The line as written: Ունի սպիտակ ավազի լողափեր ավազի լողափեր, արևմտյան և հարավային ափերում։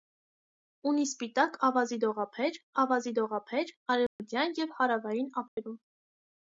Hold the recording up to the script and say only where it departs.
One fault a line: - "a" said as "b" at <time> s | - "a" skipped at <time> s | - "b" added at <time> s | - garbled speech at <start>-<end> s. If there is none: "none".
none